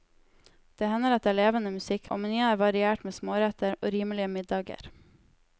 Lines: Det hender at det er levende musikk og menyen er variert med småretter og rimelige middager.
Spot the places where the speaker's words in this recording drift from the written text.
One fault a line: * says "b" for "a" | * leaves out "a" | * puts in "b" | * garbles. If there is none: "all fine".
all fine